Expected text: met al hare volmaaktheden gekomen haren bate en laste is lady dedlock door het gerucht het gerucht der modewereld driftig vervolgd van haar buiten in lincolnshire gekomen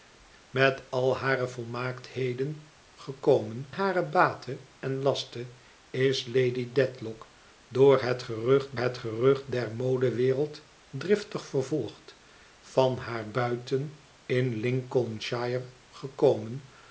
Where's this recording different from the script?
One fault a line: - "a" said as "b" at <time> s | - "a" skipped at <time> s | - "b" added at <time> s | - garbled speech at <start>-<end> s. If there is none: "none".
none